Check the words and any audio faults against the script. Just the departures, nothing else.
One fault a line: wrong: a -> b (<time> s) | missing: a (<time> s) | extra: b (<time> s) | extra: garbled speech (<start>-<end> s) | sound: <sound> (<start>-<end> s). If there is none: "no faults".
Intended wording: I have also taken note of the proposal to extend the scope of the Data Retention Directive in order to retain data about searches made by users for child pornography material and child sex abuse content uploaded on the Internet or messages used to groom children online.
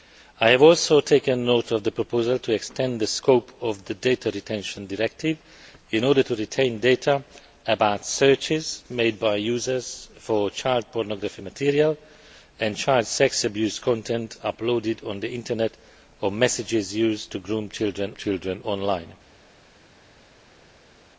extra: children (18.1 s)